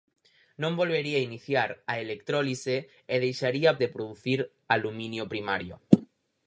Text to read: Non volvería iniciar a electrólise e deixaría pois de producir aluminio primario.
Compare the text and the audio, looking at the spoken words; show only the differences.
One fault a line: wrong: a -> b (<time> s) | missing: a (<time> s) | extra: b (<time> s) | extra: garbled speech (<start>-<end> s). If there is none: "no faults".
missing: pois (3.7 s)